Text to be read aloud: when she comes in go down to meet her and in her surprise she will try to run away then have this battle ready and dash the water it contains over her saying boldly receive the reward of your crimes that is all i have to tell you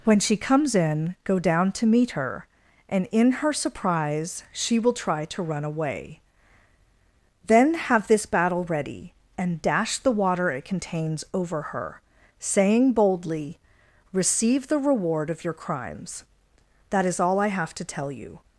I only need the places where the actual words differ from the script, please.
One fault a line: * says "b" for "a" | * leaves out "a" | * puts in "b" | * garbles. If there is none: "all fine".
all fine